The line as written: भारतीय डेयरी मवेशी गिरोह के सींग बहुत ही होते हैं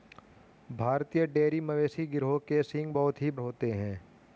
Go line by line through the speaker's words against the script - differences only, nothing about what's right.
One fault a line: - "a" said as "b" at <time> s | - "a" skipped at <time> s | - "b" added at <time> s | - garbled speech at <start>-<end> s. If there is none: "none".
none